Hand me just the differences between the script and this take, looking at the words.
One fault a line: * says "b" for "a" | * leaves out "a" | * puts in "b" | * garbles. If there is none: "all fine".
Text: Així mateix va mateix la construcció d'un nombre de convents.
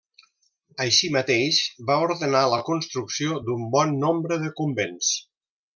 * says "ordenar" for "mateix"
* puts in "bon"